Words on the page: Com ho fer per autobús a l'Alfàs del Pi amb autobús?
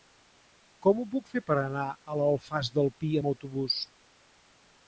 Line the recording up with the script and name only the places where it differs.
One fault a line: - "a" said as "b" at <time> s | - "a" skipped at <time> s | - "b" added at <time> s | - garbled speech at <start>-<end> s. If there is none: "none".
- "puc" added at 1.1 s
- "autobús" said as "anar" at 1.6 s